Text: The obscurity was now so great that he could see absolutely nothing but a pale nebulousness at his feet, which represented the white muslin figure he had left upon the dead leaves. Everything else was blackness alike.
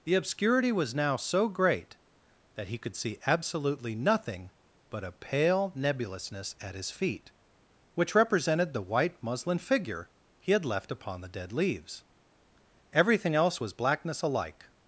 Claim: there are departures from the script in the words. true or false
false